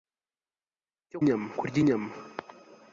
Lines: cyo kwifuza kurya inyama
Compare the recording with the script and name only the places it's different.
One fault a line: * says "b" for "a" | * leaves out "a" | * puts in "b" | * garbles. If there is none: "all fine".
* says "inyama" for "kwifuza"